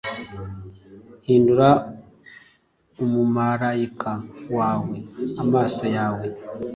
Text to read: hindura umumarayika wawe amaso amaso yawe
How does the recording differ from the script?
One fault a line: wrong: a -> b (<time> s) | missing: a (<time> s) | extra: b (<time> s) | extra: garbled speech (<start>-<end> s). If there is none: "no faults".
missing: amaso (5.8 s)